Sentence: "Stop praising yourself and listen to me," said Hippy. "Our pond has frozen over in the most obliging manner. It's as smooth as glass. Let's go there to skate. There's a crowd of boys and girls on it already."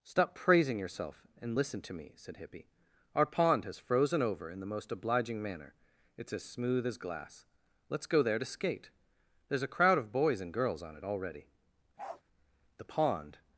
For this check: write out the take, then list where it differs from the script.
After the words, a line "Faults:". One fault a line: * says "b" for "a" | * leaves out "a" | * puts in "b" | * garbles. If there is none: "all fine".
"Stop praising yourself and listen to me," said Hippy. "Our pond has frozen over in the most obliging manner. It's as smooth as glass. Let's go there to skate. There's a crowd of boys and girls on it already." The pond
Faults:
* puts in "The pond"